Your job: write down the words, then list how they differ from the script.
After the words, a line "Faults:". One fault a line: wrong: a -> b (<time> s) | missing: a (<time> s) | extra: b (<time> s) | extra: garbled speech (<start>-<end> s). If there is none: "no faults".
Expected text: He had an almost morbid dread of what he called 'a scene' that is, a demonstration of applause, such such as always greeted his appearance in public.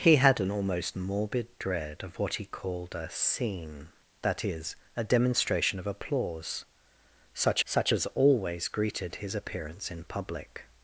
He had an almost morbid dread of what he called 'a scene' that is, a demonstration of applause, such such as always greeted his appearance in public.
Faults:
no faults